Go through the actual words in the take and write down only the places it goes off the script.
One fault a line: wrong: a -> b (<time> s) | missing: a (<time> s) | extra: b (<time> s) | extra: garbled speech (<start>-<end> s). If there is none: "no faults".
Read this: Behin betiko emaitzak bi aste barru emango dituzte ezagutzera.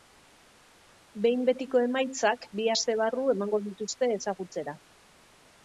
no faults